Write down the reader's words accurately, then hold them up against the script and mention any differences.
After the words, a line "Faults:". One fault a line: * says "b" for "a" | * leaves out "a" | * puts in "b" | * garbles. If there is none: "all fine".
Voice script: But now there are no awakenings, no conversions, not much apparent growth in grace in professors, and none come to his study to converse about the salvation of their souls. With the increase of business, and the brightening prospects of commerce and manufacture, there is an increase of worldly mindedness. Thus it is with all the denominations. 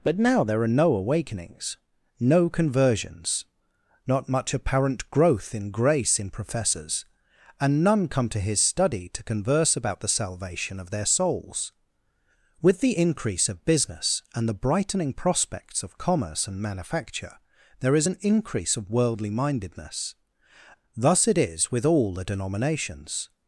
But now there are no awakenings, no conversions, not much apparent growth in grace in professors, and none come to his study to converse about the salvation of their souls. With the increase of business, and the brightening prospects of commerce and manufacture, there is an increase of worldly mindedness. Thus it is with all the denominations.
Faults:
all fine